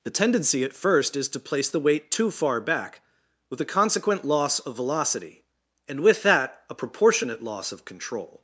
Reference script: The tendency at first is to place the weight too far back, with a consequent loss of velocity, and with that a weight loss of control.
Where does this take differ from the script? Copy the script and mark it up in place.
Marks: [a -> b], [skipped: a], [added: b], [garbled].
The tendency at first is to place the weight too far back, with a consequent loss of velocity, and with that a [weight -> proportionate] loss of control.